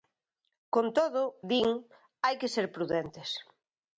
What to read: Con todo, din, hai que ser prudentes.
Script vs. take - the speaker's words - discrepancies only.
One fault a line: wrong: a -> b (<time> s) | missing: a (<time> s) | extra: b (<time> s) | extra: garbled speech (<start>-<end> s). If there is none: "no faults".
no faults